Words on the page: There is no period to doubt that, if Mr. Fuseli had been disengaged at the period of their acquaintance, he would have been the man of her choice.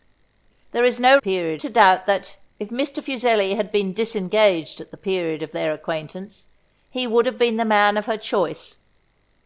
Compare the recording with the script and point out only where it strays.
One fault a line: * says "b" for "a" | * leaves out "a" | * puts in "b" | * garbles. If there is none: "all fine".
all fine